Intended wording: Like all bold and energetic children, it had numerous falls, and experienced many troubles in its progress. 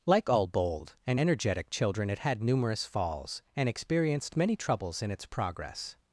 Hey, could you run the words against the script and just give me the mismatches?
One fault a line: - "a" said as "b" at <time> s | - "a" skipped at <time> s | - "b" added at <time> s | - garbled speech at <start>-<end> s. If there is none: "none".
none